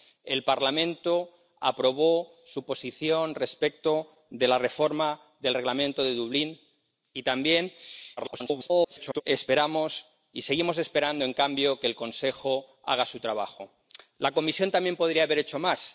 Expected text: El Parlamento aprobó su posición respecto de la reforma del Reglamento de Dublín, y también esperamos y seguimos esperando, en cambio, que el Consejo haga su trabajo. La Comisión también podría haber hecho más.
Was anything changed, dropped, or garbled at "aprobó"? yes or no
no